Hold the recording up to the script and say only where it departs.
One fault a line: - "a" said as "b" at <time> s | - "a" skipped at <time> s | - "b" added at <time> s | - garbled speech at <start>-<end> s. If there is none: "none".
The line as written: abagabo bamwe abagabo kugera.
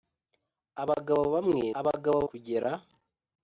none